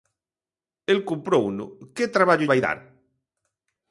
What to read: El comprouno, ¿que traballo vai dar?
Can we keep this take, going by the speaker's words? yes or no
yes